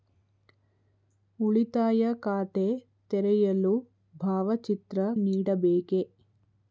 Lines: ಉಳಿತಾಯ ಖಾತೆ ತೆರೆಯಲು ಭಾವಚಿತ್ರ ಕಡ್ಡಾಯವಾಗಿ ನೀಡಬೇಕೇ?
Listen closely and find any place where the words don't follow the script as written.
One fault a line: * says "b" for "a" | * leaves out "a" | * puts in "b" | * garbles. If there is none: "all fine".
* leaves out "ಕಡ್ಡಾಯವಾಗಿ"